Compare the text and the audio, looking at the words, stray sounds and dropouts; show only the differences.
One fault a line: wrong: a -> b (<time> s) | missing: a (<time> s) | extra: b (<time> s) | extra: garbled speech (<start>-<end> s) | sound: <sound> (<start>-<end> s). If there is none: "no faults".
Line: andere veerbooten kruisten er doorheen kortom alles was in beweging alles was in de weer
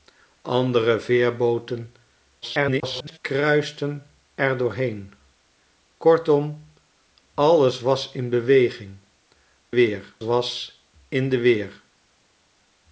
extra: garbled speech (2.4-3.2 s)
wrong: alles -> weer (9.7 s)